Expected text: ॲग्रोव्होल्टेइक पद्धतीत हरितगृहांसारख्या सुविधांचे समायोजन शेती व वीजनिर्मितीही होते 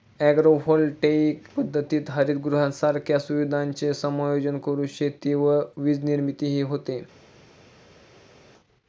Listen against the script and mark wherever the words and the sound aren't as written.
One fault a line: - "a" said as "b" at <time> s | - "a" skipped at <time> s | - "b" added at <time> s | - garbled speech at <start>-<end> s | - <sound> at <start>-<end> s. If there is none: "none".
- "करून" added at 4.6 s